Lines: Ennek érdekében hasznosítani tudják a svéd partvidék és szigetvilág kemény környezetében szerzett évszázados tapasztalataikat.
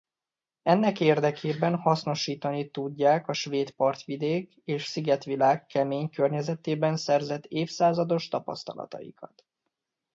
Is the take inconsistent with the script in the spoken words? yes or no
no